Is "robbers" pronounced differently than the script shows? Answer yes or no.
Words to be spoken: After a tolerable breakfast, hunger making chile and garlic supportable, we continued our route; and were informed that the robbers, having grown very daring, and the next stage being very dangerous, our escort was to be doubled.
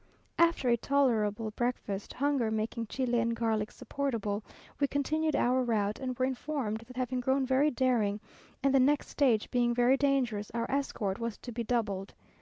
yes